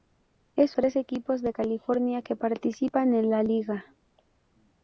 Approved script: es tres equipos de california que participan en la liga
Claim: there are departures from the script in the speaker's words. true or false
false